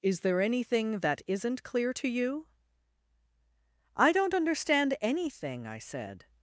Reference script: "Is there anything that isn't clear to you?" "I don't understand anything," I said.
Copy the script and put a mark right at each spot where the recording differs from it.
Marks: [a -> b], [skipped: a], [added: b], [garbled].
"Is there anything that isn't clear to you?" "I don't understand anything," I said.